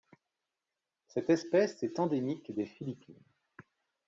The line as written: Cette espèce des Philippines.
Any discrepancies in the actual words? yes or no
yes